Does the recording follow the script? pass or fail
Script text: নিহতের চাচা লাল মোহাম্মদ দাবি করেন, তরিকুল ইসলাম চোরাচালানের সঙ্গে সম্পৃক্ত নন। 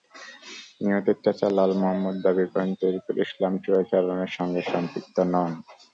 pass